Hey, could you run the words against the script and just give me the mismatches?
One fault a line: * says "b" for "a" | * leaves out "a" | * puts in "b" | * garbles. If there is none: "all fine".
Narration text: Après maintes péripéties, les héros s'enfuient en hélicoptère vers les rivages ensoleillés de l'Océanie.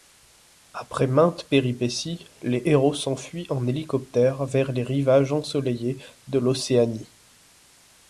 all fine